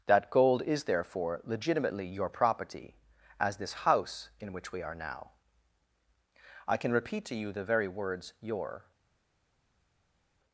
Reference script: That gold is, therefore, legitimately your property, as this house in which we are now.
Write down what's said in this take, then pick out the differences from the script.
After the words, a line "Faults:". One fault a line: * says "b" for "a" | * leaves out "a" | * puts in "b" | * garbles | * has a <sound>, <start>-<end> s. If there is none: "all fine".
That gold is, therefore, legitimately your property, as this house in which we are now. I can repeat to you the very words your
Faults:
* puts in "I can repeat to you the very words your"